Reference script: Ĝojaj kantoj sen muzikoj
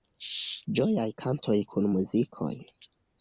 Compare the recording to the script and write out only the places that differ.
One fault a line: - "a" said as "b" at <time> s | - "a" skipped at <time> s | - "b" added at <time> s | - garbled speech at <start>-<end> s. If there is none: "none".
- "sen" said as "kun" at 1.7 s